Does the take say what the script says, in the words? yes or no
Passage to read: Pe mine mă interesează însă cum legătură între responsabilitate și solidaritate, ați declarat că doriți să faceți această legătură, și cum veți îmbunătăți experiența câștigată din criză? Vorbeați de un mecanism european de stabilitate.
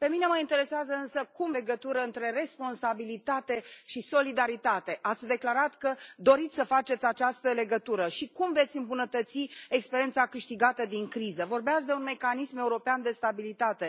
yes